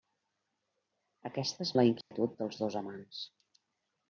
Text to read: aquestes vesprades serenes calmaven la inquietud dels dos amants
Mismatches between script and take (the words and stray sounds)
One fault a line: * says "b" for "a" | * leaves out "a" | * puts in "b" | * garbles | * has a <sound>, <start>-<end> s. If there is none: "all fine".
* leaves out "vesprades serenes calmaven"
* has a dropout, 2.0-2.1 s